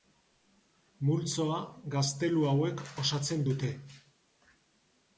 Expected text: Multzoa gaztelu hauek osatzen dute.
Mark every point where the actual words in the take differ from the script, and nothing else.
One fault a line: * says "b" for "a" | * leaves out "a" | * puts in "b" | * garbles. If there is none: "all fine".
all fine